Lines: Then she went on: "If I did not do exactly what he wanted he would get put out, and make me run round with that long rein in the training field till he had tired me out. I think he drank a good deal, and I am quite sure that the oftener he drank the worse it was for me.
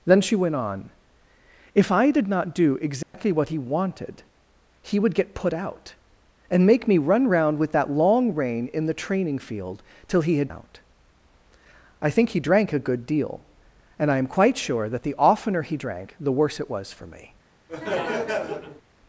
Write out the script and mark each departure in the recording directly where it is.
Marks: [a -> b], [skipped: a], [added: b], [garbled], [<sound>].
Then she went on: "If I did not do exactly [dropout] what he wanted he would get put out, and make me run round with that long rein in the training field till he had [skipped: tired me] out. I think he drank a good deal, and I am quite sure that the oftener he drank the worse it was for me. [laugh]